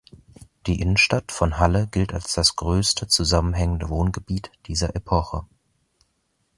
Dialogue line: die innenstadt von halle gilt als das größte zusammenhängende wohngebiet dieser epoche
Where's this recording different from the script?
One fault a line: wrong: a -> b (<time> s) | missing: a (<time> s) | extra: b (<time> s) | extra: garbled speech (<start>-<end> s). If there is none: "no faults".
no faults